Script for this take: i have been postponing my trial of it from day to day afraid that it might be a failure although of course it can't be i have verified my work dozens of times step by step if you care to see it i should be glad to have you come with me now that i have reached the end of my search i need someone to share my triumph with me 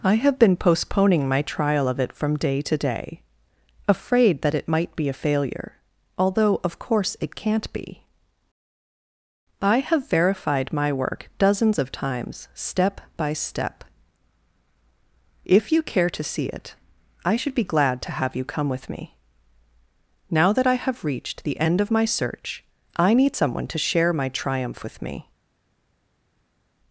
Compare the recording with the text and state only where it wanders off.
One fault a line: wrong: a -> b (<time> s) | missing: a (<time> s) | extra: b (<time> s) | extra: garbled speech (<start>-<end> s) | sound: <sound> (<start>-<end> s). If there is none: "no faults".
no faults